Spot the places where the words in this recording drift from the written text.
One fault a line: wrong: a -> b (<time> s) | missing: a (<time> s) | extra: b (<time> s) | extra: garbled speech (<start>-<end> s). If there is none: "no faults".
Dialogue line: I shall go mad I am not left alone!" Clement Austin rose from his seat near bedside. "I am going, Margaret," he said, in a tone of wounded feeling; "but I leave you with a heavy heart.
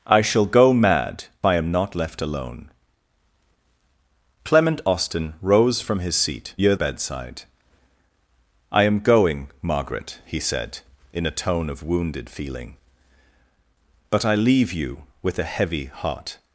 no faults